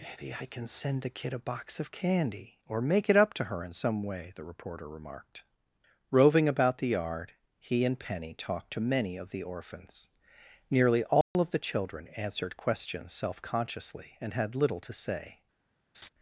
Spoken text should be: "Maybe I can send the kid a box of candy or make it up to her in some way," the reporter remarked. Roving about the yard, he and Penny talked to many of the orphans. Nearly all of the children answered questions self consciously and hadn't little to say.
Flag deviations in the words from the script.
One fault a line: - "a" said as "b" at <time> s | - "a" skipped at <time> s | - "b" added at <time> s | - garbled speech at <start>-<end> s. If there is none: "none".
- "hadn't" said as "had" at 14.3 s